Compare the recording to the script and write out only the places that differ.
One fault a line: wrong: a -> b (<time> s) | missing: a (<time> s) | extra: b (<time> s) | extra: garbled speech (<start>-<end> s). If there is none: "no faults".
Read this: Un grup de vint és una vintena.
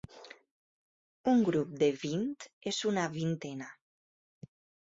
no faults